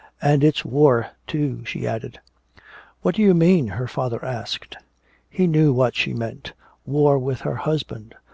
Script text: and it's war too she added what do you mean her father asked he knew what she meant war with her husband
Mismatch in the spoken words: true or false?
false